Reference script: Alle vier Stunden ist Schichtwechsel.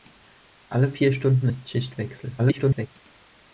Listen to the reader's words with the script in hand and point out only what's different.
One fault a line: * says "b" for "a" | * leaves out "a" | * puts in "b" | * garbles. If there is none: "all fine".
* garbles